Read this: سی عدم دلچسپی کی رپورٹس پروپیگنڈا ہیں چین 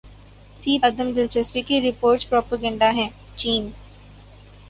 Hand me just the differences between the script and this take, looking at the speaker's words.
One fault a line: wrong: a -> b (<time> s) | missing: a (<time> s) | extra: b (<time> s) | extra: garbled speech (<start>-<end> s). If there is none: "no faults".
no faults